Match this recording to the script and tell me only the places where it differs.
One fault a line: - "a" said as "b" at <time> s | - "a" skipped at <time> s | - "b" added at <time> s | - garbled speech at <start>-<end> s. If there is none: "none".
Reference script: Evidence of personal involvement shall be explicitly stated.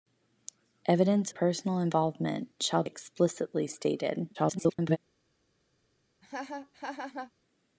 - "of" skipped at 1.3 s
- "be" skipped at 2.8 s
- garbled speech at 4.3-5.0 s